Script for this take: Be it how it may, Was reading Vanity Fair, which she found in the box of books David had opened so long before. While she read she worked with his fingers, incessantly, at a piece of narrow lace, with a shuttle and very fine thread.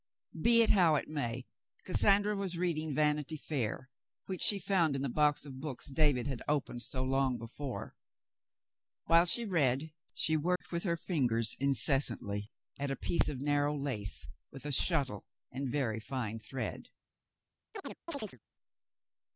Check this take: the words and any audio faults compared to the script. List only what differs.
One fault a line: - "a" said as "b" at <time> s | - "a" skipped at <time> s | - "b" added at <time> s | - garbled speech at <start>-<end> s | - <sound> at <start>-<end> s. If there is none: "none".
- "Cassandra" added at 1.9 s
- dropout at 10.6-10.6 s
- "his" said as "her" at 10.8 s
- chirp at 17.7-18.4 s